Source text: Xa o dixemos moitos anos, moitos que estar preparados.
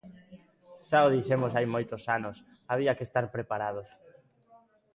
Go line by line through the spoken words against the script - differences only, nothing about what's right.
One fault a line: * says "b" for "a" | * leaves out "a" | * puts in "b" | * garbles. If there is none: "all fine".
* puts in "hai"
* says "había" for "moitos"